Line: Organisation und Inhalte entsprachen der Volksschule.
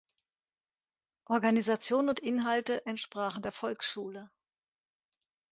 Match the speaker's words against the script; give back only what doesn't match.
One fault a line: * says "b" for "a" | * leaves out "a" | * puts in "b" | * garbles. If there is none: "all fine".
all fine